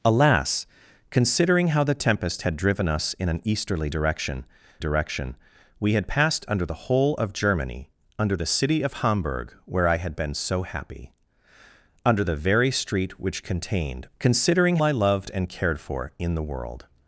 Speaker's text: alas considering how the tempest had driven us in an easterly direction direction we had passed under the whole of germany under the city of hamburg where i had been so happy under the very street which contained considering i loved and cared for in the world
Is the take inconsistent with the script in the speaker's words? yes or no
no